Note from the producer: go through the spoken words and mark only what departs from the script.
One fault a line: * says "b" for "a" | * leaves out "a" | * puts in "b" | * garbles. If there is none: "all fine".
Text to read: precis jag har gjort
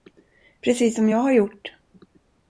* puts in "som"